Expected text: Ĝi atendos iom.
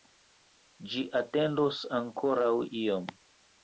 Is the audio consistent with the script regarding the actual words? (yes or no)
no